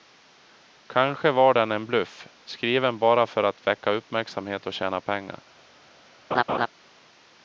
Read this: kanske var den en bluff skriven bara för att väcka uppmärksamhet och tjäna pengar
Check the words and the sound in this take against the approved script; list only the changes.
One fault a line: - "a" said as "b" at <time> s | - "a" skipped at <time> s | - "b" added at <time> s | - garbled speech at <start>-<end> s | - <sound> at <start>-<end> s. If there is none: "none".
- laugh at 6.3-6.7 s